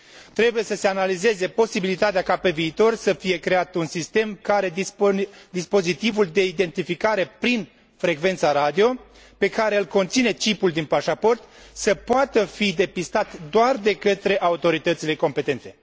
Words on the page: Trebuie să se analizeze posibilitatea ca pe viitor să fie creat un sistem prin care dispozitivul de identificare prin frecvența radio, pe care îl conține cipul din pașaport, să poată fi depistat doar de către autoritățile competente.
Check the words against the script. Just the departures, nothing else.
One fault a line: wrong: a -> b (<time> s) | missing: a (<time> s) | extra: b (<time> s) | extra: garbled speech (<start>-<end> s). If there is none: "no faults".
missing: prin (4.4 s)